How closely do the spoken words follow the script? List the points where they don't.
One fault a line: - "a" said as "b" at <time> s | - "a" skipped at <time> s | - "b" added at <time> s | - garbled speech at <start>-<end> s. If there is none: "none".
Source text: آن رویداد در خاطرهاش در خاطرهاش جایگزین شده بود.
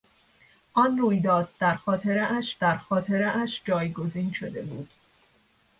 none